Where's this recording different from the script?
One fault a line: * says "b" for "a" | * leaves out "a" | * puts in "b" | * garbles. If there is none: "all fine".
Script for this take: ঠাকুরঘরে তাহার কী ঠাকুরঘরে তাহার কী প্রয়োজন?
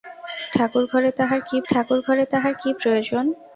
all fine